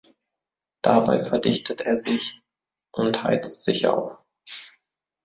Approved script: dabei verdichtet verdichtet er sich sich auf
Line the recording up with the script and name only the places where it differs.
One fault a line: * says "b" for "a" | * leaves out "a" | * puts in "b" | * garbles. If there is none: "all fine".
* leaves out "verdichtet"
* puts in "und heizt"